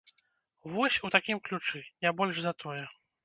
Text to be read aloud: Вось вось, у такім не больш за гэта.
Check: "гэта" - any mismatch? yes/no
yes